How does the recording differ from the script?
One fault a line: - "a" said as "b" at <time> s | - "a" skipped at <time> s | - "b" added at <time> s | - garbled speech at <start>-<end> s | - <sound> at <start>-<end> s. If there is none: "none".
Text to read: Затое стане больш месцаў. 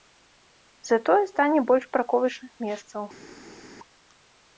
- "парковачных" added at 2.0 s